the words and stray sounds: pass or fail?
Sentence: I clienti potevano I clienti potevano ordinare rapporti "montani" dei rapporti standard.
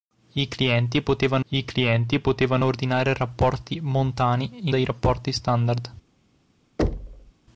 fail